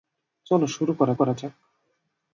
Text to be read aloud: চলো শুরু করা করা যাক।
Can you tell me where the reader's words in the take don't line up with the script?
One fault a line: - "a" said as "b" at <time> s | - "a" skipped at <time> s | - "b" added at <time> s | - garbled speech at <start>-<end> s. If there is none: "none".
none